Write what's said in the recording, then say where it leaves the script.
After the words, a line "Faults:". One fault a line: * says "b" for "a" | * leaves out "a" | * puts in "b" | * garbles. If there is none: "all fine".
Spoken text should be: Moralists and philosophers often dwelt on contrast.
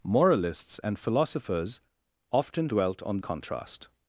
Moralists and philosophers often dwelt on contrast.
Faults:
all fine